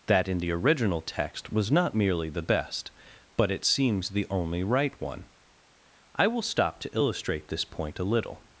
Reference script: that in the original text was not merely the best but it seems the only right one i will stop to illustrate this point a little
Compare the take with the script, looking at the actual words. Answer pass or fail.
pass